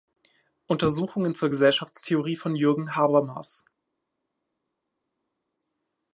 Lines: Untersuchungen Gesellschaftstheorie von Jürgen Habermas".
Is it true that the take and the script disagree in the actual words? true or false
true